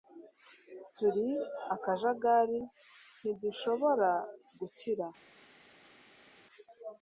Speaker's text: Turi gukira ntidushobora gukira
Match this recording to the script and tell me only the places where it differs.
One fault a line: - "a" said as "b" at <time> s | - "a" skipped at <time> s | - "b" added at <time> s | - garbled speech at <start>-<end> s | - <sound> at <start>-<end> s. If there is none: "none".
- "gukira" said as "akajagari" at 1.8 s